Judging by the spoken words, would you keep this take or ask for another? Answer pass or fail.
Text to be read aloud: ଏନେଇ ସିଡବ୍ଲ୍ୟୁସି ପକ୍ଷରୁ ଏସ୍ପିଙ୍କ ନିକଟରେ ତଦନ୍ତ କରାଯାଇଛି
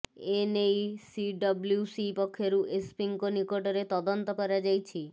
pass